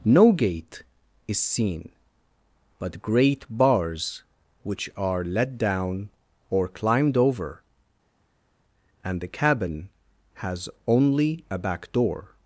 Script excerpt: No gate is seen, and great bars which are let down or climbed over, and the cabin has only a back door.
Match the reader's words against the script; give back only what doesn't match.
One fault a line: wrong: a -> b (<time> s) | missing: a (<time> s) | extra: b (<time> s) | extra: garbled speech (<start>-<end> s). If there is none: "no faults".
wrong: and -> but (2.8 s)